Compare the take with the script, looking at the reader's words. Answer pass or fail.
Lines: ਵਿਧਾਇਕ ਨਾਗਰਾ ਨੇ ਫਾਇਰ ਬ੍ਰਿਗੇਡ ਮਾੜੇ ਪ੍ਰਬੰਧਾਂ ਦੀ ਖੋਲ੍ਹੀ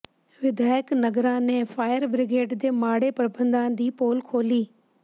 fail